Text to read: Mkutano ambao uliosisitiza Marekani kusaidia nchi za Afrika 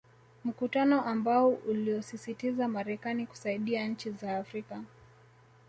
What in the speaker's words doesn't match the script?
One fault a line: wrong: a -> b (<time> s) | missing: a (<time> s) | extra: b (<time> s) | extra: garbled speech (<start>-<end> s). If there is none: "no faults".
no faults